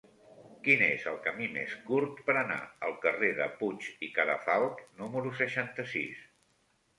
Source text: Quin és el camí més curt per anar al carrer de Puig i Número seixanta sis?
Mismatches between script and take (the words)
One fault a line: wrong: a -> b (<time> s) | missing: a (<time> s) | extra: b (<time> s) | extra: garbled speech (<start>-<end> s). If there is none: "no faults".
extra: Cadafalch (4.2 s)